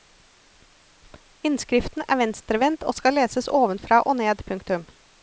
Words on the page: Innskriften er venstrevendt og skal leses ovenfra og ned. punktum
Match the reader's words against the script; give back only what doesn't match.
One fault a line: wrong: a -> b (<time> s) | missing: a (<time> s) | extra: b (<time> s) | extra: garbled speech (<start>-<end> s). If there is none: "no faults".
no faults